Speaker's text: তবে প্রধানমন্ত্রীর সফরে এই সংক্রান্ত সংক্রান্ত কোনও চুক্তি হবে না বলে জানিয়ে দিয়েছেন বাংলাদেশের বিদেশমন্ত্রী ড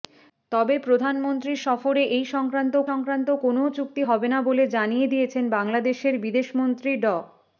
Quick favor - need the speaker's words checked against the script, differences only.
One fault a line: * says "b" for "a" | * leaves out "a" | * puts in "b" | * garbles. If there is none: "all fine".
all fine